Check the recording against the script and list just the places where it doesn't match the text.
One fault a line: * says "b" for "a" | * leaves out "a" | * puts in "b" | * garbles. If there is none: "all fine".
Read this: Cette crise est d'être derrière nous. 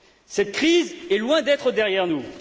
* puts in "loin"